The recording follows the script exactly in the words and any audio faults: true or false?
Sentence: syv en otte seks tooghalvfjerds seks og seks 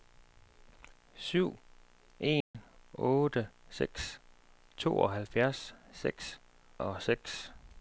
false